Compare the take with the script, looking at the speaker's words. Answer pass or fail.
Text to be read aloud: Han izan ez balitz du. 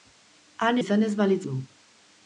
pass